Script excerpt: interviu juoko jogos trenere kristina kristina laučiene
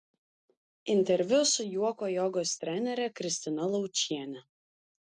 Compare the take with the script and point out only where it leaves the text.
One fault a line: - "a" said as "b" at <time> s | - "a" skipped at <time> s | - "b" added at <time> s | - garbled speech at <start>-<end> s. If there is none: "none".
- "su" added at 1.5 s
- "kristina" skipped at 3.7 s